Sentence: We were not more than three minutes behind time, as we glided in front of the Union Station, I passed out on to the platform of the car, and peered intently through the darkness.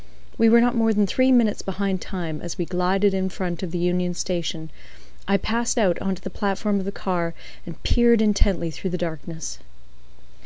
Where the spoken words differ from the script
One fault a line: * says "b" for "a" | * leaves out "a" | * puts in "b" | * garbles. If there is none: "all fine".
all fine